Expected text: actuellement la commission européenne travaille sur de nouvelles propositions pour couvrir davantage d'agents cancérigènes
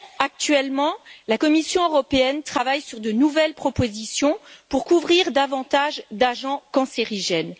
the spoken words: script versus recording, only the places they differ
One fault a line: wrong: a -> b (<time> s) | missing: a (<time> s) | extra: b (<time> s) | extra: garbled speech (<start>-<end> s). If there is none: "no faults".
no faults